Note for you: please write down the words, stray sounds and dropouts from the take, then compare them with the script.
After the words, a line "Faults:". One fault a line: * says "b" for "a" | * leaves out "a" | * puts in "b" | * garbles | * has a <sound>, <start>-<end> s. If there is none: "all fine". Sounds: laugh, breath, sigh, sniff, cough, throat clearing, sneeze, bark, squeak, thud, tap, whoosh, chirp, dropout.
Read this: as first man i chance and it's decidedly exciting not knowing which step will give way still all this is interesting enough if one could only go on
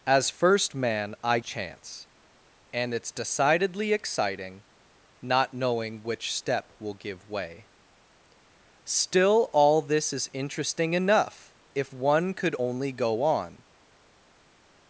as first man i chance and it's decidedly exciting not knowing which step will give way still all this is interesting enough if one could only go on
Faults:
all fine